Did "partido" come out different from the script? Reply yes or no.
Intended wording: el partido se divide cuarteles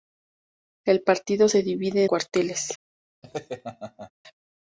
no